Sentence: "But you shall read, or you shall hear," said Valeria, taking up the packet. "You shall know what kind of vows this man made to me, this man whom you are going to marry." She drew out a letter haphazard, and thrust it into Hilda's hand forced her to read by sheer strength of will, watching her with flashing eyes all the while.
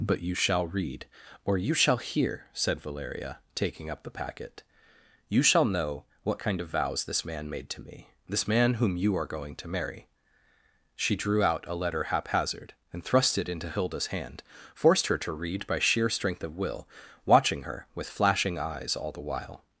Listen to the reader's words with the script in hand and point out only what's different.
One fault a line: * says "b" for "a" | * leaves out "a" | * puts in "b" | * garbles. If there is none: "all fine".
all fine